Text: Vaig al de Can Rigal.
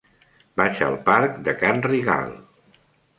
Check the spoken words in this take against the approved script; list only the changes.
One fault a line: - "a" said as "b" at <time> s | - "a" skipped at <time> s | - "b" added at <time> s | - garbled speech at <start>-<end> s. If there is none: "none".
- "parc" added at 1.1 s